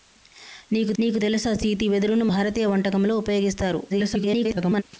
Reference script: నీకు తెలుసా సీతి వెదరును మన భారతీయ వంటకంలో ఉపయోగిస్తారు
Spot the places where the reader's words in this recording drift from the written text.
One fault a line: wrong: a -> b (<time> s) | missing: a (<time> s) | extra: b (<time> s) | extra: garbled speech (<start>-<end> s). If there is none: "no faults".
extra: నీకు (1.0 s)
missing: మన (2.3 s)
extra: garbled speech (3.9-4.8 s)